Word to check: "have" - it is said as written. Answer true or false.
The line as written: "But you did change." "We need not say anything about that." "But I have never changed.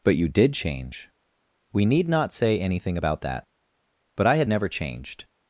false